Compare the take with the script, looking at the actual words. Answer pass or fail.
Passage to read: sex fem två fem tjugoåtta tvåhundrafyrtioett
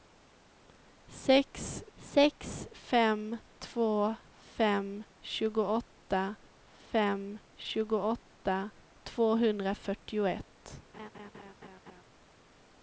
fail